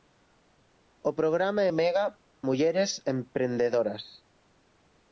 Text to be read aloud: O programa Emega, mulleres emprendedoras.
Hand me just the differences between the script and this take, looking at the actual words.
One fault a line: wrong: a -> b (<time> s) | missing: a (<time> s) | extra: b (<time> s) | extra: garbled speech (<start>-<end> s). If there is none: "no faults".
no faults